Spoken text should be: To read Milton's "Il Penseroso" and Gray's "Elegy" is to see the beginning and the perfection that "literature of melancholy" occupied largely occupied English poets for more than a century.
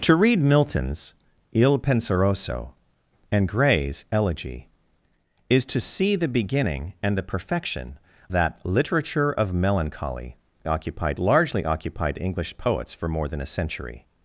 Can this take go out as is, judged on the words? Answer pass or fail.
pass